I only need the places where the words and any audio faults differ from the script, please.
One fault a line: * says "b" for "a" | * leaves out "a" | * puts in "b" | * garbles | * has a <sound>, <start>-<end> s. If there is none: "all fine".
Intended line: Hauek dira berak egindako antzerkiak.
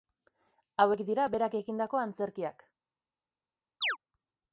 * has a chirp, 3.8-4.0 s